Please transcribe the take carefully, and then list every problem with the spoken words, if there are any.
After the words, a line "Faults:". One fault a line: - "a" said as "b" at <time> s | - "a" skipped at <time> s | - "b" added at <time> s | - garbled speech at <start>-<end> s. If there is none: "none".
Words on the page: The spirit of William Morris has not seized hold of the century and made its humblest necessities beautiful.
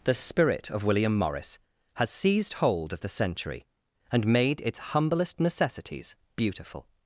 The spirit of William Morris has seized hold of the century and made its humblest necessities beautiful.
Faults:
- "not" skipped at 2.1 s